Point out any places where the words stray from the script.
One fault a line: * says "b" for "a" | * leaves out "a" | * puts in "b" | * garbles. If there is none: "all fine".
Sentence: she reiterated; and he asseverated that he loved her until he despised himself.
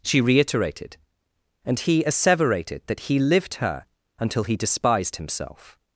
* says "lived" for "loved"